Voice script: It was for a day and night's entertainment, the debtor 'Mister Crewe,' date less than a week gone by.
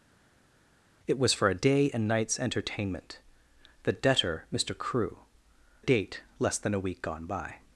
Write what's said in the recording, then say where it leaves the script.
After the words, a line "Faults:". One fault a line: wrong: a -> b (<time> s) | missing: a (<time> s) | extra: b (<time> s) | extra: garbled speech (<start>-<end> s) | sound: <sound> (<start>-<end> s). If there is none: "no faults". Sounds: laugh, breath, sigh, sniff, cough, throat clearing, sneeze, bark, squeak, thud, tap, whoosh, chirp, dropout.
It was for a day and night's entertainment, the debtor 'Mister Crewe,' date less than a week gone by.
Faults:
no faults